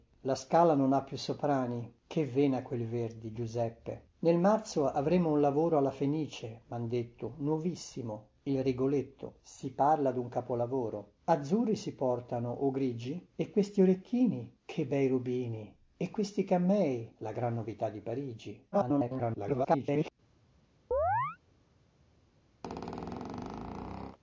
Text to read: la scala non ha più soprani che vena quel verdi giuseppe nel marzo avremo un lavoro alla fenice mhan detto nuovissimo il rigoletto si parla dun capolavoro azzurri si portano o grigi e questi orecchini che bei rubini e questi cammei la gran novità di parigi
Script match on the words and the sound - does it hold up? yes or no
no